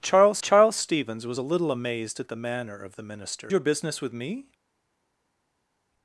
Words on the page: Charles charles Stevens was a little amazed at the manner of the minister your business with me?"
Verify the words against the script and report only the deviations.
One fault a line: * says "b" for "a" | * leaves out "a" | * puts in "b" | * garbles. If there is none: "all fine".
all fine